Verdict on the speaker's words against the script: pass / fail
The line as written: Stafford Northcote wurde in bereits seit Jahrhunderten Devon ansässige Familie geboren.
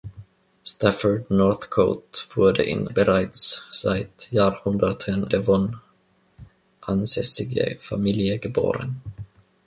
pass